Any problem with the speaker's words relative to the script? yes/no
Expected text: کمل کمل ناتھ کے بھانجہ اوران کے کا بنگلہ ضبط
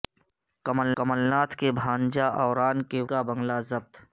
no